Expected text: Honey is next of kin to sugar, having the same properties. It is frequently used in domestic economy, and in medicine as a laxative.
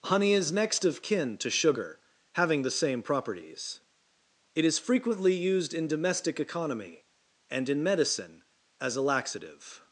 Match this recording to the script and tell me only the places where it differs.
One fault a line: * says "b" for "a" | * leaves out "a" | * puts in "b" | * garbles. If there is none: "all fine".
all fine